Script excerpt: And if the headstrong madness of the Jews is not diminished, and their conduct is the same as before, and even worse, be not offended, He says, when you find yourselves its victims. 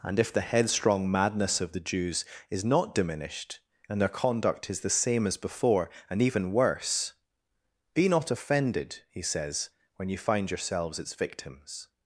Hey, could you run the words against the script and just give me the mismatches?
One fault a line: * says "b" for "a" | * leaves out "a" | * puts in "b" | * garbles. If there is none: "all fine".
all fine